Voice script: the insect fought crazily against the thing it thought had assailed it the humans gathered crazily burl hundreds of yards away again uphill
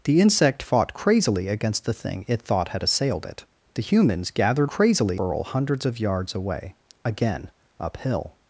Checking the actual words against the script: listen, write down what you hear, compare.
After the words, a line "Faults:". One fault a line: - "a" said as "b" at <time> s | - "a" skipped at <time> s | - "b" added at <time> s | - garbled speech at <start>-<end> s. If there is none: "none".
the insect fought crazily against the thing it thought had assailed it the humans gathered crazily burl hundreds of yards away again uphill
Faults:
none